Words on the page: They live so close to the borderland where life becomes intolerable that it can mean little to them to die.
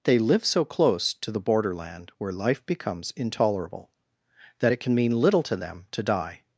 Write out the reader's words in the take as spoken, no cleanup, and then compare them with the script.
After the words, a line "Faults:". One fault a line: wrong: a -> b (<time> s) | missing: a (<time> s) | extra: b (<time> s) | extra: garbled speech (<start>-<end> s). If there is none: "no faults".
They live so close to the borderland where life becomes intolerable that it can mean little to them to die.
Faults:
no faults